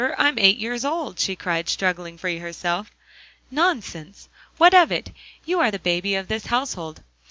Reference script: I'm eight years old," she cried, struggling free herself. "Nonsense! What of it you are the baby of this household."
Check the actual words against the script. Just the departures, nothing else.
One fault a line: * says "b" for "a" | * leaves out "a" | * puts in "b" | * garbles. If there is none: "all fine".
all fine